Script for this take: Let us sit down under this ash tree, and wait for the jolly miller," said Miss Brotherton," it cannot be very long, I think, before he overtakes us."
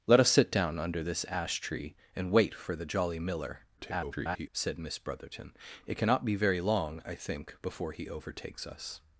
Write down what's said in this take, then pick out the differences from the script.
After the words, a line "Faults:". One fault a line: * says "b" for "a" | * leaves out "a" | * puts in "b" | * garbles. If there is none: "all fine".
Let us sit down under this ash tree, and wait for the jolly miller," [garbled] said Miss Brotherton," it cannot be very long, I think, before he overtakes us."
Faults:
* garbles